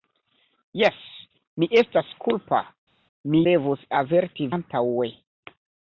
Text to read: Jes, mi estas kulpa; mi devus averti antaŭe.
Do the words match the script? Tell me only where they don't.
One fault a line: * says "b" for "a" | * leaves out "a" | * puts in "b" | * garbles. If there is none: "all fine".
all fine